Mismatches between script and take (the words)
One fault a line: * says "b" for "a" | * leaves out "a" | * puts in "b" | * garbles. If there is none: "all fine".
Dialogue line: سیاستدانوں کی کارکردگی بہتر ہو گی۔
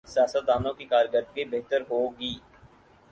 all fine